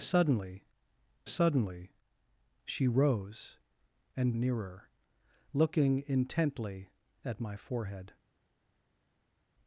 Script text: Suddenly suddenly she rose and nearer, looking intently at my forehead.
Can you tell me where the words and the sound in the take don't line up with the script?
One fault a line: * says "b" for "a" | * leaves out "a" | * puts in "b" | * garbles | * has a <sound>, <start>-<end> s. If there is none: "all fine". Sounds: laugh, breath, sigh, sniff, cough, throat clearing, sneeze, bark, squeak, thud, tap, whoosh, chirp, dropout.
all fine